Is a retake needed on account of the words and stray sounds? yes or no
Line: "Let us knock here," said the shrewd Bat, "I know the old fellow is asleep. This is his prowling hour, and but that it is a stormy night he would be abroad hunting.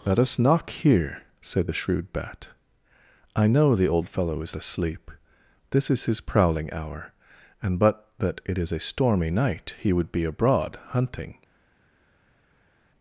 no